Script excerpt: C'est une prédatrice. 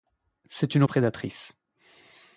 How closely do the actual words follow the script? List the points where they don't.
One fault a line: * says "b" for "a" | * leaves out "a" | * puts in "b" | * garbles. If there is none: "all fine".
all fine